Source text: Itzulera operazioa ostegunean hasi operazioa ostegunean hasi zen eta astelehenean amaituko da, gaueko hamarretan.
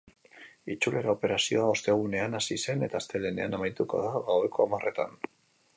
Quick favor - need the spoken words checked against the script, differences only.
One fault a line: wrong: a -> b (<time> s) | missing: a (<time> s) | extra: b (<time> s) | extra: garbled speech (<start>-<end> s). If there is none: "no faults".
missing: operazioa ostegunean hasi (2.6 s)